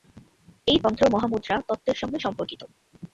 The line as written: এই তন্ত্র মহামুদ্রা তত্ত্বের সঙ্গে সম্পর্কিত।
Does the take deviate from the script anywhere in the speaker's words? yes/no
no